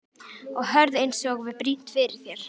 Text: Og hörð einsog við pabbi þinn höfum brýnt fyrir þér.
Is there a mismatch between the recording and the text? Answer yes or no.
yes